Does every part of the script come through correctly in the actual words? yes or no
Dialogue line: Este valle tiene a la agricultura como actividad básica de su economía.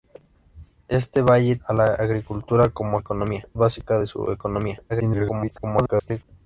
no